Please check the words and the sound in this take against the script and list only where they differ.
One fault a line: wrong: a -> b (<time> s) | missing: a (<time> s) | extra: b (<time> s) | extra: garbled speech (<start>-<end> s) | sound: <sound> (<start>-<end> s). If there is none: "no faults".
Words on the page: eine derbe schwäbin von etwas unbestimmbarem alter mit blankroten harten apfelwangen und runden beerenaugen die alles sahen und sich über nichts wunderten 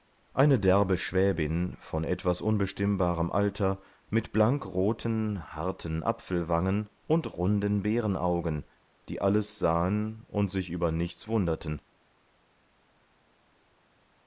no faults